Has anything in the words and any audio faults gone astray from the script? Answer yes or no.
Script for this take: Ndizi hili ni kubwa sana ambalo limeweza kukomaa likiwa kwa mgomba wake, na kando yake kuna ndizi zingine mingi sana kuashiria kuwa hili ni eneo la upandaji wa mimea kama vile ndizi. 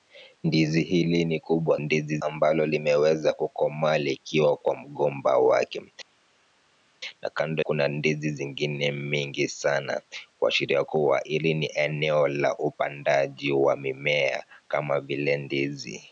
yes